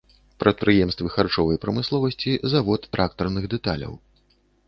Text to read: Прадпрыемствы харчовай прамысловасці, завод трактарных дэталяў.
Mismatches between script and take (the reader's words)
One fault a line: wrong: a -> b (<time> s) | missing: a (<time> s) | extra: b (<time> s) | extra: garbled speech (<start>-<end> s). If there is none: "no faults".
no faults